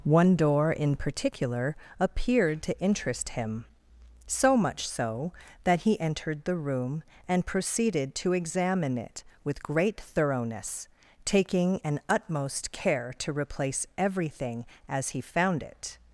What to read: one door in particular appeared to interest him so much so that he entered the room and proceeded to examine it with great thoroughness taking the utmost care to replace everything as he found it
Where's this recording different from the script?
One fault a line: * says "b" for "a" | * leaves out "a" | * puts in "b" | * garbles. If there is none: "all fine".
* says "an" for "the"